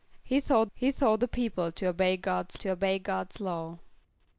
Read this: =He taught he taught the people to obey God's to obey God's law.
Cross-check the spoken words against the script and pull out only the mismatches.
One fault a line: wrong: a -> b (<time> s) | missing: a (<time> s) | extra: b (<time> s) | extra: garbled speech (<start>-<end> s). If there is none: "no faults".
no faults